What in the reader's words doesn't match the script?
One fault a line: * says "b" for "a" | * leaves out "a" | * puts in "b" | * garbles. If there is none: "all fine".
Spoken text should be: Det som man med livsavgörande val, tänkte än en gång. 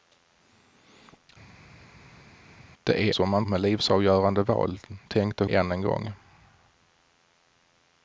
all fine